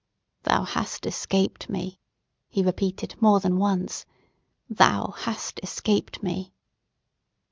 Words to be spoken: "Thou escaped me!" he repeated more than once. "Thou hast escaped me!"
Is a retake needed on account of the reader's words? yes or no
yes